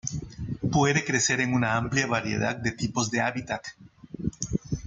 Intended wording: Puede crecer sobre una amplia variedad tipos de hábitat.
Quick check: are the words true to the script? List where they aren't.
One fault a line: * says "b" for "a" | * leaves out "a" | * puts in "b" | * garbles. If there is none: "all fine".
* says "en" for "sobre"
* puts in "de"